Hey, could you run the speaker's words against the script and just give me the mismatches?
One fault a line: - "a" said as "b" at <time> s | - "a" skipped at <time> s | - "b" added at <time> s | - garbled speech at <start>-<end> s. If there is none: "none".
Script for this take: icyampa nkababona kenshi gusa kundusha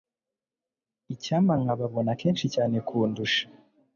- "gusa" said as "cyane" at 2.5 s